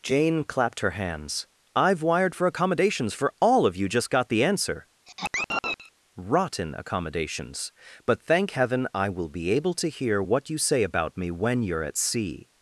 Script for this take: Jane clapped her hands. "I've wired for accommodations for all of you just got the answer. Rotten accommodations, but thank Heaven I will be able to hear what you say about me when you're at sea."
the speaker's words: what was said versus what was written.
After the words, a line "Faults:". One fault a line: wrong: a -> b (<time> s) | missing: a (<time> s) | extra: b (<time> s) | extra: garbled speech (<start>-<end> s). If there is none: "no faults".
Jane clapped her hands. "I've wired for accommodations for all of you just got the answer. Rotten accommodations, but thank Heaven I will be able to hear what you say about me when you're at sea."
Faults:
no faults